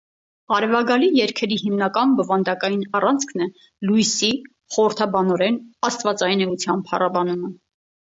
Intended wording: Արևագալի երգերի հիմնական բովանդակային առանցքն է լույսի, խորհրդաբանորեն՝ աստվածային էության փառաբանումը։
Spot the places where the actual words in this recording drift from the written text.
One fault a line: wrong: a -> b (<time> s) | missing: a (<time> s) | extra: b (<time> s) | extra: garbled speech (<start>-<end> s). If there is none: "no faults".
no faults